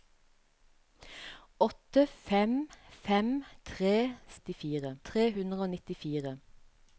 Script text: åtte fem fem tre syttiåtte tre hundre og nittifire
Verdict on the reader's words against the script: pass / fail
fail